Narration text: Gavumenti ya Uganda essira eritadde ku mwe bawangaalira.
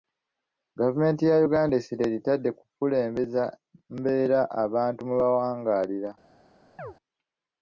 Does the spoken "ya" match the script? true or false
true